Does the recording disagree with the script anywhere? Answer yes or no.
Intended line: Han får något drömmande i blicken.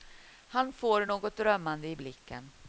no